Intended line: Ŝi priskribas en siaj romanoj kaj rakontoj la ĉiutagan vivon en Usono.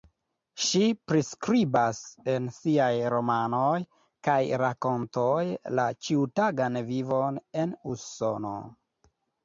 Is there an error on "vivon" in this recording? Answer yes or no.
no